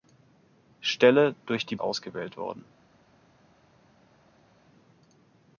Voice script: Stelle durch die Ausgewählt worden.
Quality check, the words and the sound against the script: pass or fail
pass